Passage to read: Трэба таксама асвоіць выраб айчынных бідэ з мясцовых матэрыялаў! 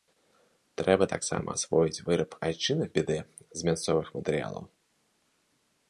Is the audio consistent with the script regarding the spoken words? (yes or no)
yes